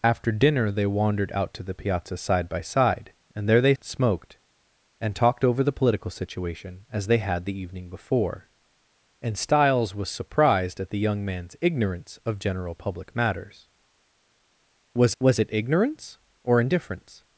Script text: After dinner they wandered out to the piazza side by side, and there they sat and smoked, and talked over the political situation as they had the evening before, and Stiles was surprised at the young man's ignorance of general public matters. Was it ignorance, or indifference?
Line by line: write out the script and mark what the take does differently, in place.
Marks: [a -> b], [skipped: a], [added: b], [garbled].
After dinner they wandered out to the piazza side by side, and there they [skipped: sat] and smoked, and talked over the political situation as they had the evening before, and Stiles was surprised at the young man's ignorance of general public matters. Was [added: was] it ignorance, or indifference?